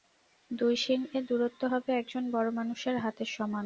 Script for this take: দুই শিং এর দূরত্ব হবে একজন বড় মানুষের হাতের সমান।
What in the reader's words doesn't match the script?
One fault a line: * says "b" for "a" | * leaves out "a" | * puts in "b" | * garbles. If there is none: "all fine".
all fine